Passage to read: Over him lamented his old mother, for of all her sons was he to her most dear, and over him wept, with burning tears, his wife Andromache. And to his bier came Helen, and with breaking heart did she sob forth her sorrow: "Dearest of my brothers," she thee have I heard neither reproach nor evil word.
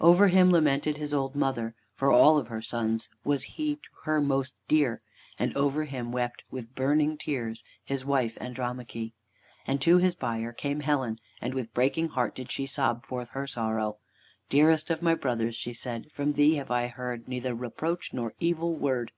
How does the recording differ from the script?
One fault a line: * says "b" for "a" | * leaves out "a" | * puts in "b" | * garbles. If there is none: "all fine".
* puts in "said from"